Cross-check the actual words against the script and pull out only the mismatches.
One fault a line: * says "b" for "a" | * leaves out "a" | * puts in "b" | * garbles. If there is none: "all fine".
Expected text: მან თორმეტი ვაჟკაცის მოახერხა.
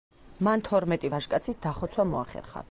* puts in "დახოცვა"